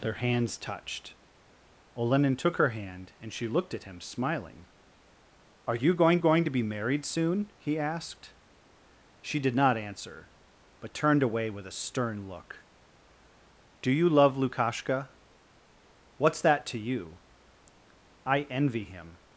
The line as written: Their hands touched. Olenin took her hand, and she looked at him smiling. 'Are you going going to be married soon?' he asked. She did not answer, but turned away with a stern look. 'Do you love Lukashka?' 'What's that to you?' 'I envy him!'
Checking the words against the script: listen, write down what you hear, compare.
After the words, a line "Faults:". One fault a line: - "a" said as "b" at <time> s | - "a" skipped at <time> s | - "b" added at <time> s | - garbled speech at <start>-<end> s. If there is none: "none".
Their hands touched. Olenin took her hand, and she looked at him smiling. 'Are you going going to be married soon?' he asked. She did not answer, but turned away with a stern look. 'Do you love Lukashka?' 'What's that to you?' 'I envy him!'
Faults:
none